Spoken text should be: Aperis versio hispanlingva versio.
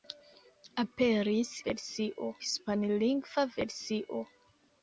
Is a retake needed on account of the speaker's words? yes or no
no